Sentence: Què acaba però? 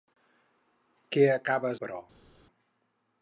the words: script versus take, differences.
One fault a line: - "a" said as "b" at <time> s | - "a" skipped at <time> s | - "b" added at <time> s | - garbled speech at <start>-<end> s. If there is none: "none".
none